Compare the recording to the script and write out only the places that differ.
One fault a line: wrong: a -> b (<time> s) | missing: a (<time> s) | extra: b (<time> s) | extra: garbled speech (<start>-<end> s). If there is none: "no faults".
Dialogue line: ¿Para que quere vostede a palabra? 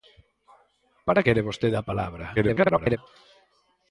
missing: que (1.2 s)
extra: garbled speech (2.4-3.0 s)